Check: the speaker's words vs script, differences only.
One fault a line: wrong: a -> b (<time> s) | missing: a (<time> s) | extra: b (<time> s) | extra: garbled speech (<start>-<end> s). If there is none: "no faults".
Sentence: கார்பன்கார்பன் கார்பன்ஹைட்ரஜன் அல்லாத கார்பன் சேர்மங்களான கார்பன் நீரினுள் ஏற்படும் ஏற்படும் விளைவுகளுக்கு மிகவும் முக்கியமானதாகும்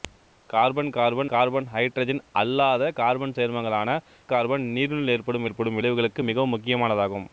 no faults